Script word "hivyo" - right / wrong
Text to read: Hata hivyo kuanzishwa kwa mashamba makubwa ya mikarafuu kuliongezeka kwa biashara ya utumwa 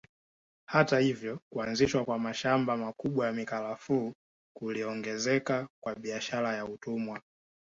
right